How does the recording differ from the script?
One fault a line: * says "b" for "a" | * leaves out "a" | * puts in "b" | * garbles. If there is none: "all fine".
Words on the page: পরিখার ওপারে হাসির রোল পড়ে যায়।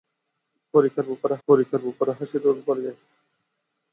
* puts in "পরিখার ওপারে"